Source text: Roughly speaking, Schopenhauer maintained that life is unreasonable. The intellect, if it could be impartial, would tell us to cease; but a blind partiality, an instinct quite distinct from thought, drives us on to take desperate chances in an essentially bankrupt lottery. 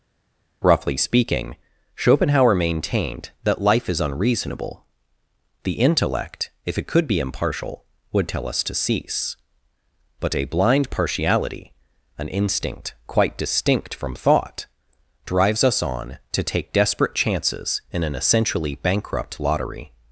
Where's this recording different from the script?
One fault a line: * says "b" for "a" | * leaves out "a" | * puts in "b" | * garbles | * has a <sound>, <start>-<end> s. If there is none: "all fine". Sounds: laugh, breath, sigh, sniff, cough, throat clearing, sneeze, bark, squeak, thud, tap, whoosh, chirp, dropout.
all fine